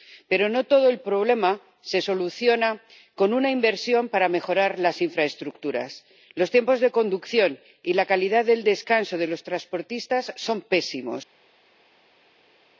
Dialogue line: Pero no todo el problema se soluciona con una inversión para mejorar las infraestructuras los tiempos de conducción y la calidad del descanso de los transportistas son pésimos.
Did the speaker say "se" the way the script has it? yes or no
yes